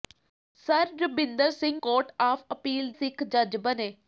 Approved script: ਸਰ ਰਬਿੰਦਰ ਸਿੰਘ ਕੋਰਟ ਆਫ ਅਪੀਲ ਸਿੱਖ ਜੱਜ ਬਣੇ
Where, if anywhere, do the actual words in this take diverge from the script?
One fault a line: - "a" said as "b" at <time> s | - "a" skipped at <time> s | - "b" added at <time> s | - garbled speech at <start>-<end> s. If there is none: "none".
none